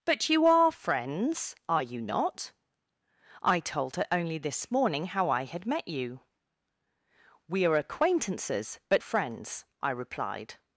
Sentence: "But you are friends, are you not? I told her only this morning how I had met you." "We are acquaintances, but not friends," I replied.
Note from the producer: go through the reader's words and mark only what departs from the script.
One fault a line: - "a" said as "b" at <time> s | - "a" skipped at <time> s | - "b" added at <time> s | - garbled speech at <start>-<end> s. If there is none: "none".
- "not" skipped at 9.0 s